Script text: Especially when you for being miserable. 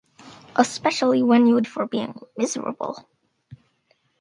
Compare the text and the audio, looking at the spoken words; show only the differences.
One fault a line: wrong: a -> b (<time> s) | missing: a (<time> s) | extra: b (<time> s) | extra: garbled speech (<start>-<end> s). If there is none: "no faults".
no faults